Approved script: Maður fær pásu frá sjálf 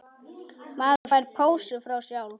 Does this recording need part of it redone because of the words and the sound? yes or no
yes